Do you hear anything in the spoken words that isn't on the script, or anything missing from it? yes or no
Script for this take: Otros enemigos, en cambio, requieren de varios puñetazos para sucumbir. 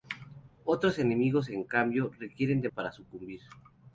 yes